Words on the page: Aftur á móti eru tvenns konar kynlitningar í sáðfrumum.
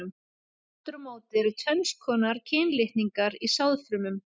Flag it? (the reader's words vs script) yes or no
no